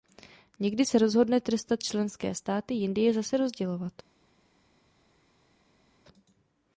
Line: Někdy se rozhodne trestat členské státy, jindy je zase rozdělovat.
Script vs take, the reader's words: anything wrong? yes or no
no